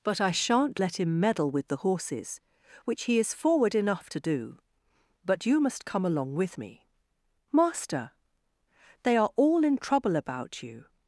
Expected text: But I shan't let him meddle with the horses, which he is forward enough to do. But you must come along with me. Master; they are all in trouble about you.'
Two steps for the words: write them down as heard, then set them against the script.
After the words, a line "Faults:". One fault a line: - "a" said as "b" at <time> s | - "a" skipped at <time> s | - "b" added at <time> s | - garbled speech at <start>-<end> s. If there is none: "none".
But I shan't let him meddle with the horses, which he is forward enough to do. But you must come along with me. Master; they are all in trouble about you.'
Faults:
none